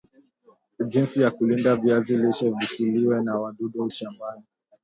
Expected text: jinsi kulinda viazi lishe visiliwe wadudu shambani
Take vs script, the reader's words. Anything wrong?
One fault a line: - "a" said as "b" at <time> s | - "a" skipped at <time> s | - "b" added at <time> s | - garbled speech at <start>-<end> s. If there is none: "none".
- "ya" added at 1.2 s
- "na" added at 3.2 s